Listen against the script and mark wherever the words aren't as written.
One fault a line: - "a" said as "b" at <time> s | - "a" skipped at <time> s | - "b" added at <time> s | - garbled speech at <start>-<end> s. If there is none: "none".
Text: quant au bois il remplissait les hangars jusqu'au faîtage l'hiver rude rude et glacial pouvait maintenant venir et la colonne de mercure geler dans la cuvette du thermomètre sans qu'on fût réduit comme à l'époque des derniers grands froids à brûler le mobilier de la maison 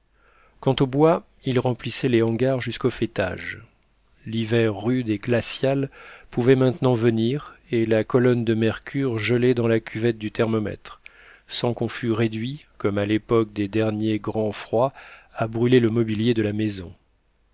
- "rude" skipped at 5.1 s